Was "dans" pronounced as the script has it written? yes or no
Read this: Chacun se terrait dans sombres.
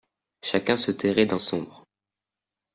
yes